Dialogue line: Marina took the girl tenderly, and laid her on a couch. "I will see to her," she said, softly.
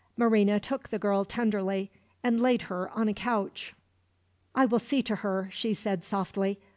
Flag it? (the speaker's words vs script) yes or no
no